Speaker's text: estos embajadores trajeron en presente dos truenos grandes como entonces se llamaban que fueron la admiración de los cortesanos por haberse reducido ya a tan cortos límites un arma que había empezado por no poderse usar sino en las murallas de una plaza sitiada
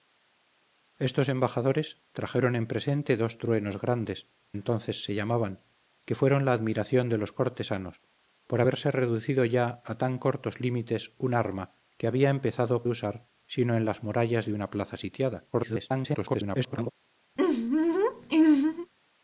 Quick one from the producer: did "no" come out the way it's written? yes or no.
no